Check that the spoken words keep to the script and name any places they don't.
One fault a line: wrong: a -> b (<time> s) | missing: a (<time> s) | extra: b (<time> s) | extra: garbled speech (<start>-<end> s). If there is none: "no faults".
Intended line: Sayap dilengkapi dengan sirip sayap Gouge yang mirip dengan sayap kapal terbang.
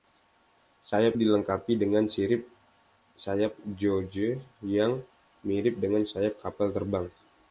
no faults